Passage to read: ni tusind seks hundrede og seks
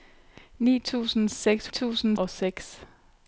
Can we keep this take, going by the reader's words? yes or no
no